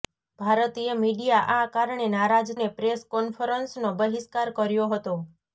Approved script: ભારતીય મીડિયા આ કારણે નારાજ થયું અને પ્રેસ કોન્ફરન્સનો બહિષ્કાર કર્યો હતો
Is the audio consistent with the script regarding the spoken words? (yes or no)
no